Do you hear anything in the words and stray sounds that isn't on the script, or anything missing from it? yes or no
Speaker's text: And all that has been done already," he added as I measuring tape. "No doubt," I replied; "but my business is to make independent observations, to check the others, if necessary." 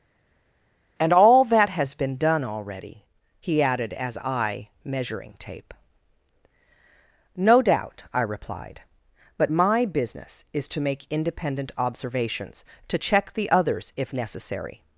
no